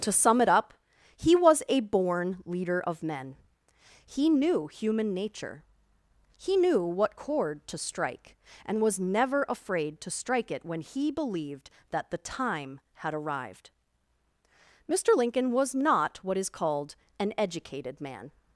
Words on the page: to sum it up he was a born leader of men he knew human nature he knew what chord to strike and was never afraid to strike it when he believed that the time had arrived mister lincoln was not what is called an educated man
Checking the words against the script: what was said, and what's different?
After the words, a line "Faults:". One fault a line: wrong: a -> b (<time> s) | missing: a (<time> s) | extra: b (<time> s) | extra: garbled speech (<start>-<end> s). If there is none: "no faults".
to sum it up he was a born leader of men he knew human nature he knew what chord to strike and was never afraid to strike it when he believed that the time had arrived mister lincoln was not what is called an educated man
Faults:
no faults